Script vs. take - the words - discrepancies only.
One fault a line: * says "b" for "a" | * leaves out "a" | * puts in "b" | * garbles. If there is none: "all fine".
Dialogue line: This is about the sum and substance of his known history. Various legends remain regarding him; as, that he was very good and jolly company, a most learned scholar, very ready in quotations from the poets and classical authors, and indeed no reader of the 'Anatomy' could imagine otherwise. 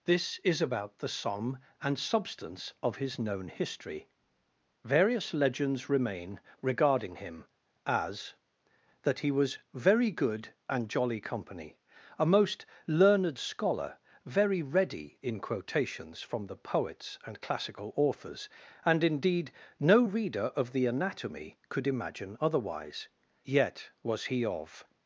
* puts in "Yet was he of"